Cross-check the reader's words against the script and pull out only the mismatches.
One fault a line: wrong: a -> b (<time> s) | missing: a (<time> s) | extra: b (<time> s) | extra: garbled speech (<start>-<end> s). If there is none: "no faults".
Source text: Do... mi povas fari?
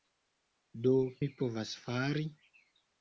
no faults